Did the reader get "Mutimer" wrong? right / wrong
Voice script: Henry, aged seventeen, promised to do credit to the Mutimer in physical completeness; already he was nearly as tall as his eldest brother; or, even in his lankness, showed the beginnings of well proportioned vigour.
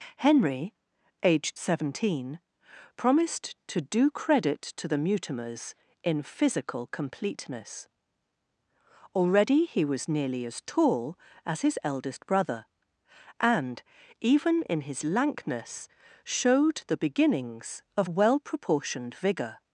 wrong